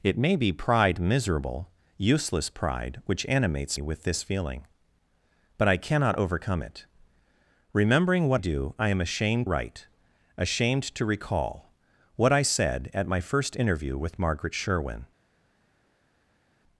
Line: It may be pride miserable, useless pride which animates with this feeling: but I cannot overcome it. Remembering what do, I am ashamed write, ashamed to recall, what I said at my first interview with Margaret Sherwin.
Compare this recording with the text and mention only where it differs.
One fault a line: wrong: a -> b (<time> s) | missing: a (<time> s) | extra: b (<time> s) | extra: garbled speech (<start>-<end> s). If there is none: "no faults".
no faults